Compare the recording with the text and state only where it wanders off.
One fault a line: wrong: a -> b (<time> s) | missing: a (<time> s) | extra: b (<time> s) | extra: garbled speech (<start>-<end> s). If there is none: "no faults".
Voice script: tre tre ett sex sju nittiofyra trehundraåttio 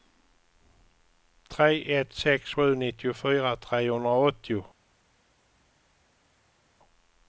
missing: tre (1.9 s)